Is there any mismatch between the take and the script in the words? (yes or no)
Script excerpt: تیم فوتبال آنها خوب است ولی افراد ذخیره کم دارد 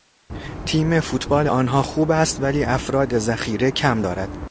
no